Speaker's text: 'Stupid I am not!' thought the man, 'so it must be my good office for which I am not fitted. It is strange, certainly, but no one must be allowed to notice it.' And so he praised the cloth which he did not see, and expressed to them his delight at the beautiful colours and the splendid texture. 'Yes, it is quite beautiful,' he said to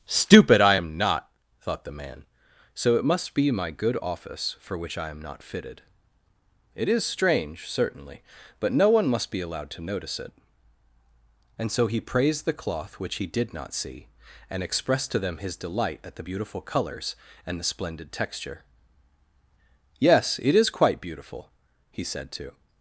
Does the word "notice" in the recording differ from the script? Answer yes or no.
no